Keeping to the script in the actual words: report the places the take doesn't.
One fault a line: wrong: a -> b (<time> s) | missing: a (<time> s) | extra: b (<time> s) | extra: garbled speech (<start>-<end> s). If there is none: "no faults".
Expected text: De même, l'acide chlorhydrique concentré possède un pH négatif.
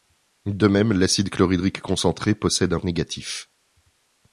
missing: pH (2.8 s)